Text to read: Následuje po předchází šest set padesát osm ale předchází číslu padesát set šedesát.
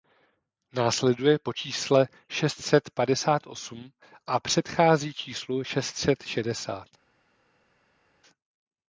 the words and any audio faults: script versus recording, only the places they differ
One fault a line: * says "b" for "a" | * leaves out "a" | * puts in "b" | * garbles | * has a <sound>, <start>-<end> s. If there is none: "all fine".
* says "čísle" for "předchází"
* says "a" for "ale"
* says "šest" for "padesát"